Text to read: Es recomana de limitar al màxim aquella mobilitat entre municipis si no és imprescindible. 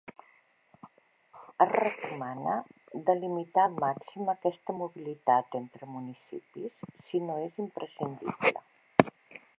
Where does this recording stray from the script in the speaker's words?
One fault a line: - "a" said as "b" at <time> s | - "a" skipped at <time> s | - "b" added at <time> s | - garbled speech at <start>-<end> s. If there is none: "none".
- "aquella" said as "aquesta" at 4.3 s